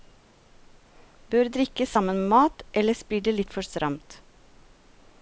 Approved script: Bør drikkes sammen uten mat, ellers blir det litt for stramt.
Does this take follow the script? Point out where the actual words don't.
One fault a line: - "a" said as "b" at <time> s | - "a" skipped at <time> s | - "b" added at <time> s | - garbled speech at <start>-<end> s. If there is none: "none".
- "uten" said as "med" at 2.2 s